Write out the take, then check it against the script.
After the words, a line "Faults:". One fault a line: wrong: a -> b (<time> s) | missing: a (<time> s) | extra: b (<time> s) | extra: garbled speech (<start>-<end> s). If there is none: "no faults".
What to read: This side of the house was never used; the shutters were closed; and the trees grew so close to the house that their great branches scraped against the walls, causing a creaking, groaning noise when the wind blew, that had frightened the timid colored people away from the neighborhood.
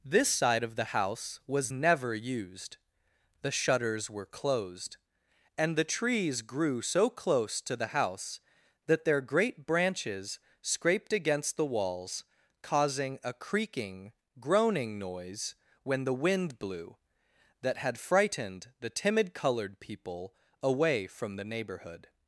This side of the house was never used; the shutters were closed; and the trees grew so close to the house that their great branches scraped against the walls, causing a creaking, groaning noise when the wind blew, that had frightened the timid colored people away from the neighborhood.
Faults:
no faults